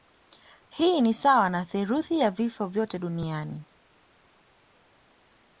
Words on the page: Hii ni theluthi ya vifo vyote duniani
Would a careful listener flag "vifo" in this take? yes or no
no